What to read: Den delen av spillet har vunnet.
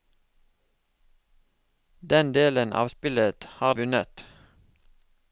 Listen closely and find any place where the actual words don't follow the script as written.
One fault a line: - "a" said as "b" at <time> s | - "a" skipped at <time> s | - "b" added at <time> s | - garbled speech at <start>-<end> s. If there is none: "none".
none